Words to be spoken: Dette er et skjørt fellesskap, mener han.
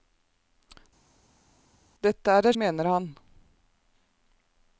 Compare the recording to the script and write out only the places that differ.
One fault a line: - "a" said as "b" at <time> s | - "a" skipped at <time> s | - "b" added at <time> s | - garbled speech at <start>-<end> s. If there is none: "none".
- "skjørt fellesskap" skipped at 2.6 s